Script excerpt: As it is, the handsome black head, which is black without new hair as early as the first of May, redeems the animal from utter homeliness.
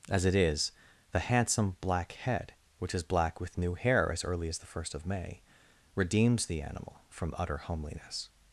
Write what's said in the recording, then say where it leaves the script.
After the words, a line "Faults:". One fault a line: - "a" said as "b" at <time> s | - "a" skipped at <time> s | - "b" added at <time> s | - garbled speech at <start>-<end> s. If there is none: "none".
As it is, the handsome black head, which is black with new hair as early as the first of May, redeems the animal from utter homeliness.
Faults:
- "without" said as "with" at 3.4 s